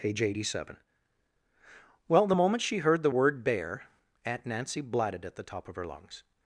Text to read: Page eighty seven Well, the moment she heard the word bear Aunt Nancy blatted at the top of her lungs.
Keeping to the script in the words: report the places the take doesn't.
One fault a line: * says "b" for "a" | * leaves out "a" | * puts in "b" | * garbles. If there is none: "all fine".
all fine